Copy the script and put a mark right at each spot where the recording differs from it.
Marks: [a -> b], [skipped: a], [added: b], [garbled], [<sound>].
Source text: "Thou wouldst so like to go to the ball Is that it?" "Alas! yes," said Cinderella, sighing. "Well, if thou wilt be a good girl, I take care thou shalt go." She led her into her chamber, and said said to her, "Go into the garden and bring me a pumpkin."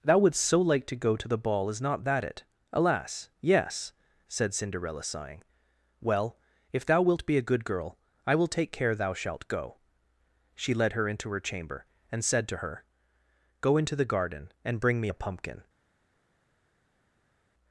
"Thou wouldst so like to go to the ball Is [added: not] that it?" "Alas! yes," said Cinderella, sighing. "Well, if thou wilt be a good girl, I [added: will] take care thou shalt go." She led her into her chamber, and said [skipped: said] to her, "Go into the garden and bring me a pumpkin."